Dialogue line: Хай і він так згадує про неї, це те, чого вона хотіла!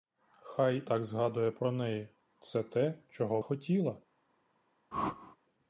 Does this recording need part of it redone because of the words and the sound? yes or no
yes